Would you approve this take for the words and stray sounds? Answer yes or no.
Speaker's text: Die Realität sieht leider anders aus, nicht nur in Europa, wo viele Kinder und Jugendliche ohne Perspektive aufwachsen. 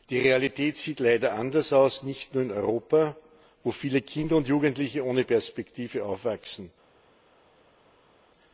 yes